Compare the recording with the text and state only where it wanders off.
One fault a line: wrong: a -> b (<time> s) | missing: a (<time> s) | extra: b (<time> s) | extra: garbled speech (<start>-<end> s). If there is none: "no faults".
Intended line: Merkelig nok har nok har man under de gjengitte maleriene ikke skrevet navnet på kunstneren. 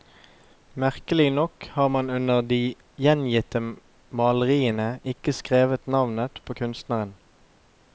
missing: nok har (1.9 s)